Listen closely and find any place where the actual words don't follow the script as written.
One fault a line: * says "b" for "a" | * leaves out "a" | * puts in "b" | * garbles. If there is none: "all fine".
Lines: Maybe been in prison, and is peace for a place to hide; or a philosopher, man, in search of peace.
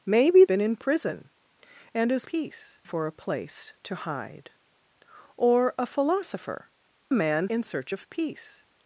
all fine